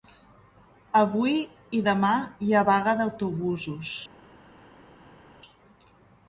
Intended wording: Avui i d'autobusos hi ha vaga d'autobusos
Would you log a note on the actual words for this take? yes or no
yes